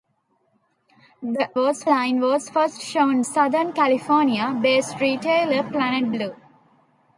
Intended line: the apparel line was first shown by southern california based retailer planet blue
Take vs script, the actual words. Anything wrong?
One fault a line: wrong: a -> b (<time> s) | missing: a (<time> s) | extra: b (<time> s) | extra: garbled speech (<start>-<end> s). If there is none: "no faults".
wrong: apparel -> was (1.6 s)
missing: by (3.2 s)